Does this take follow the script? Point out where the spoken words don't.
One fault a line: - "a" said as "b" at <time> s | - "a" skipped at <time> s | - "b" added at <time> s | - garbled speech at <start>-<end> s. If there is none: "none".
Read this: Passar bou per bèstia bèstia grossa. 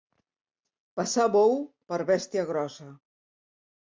- "bèstia" skipped at 2.5 s